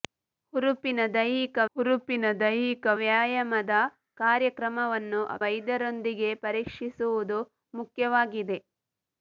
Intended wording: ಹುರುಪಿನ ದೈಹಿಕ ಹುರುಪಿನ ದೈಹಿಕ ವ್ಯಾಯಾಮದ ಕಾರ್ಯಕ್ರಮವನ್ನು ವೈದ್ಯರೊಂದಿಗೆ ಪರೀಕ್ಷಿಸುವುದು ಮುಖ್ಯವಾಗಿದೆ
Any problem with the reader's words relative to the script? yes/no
no